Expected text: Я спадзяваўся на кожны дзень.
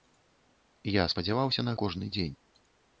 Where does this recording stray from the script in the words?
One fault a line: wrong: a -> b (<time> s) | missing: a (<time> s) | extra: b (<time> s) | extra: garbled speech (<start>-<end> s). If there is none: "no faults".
no faults